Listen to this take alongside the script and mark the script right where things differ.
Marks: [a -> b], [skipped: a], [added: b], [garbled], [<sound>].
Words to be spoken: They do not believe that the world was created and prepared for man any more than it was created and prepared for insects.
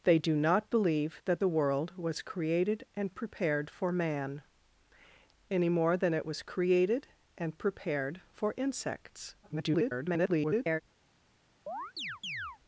They do not believe that the world was created and prepared for man any more than it was created and prepared for insects. [garbled] [chirp]